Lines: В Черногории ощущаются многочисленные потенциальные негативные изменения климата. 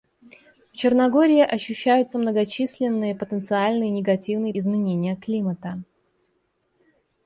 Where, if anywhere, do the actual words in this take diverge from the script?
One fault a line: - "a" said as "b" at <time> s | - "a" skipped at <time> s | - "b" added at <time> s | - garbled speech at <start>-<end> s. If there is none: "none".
none